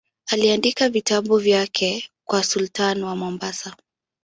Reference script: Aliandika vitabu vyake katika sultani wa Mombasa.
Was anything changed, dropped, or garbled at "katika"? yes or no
yes